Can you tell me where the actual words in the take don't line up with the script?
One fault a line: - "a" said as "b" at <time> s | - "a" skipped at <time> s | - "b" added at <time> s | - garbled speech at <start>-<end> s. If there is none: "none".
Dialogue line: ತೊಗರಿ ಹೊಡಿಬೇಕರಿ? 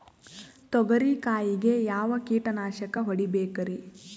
- "ಕಾಯಿಗೆ ಯಾವ ಕೀಟನಾಶಕ" added at 1.2 s